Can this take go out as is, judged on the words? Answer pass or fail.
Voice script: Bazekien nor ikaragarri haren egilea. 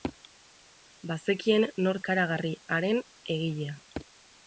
pass